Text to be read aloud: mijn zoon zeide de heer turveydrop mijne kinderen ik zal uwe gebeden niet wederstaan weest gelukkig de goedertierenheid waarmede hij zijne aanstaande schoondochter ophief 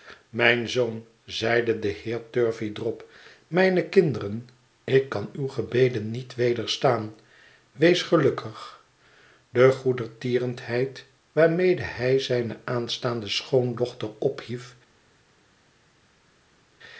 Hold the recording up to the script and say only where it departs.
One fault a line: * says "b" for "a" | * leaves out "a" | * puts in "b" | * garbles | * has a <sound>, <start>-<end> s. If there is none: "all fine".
* says "kan" for "zal"